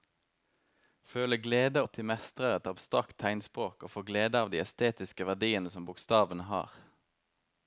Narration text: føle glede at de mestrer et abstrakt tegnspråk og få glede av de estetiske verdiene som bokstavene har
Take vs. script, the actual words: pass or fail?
pass